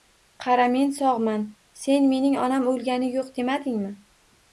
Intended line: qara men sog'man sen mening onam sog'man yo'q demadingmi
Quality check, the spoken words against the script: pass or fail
fail